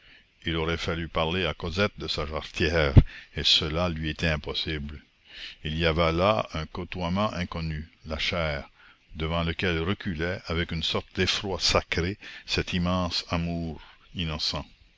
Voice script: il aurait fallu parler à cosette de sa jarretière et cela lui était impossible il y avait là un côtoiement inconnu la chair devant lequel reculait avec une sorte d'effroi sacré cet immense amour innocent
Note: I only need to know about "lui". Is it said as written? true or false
true